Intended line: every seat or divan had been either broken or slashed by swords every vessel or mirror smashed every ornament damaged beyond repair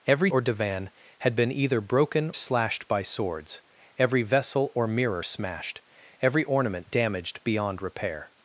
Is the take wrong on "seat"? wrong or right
wrong